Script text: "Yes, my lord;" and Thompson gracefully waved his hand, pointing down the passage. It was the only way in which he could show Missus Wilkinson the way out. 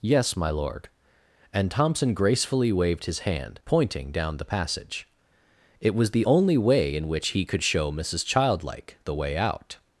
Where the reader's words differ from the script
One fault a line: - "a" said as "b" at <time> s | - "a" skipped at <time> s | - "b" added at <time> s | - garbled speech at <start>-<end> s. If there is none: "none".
- "Wilkinson" said as "Childlike" at 8.2 s